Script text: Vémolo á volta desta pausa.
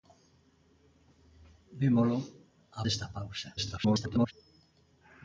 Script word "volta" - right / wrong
wrong